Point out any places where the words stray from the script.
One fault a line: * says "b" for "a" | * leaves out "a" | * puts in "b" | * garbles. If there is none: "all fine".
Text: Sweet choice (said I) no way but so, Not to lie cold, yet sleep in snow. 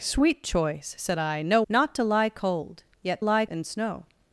* leaves out "way but so"
* says "lie" for "sleep"